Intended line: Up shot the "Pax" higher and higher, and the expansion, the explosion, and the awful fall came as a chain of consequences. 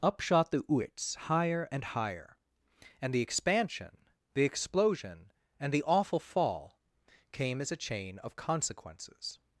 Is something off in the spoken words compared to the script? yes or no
yes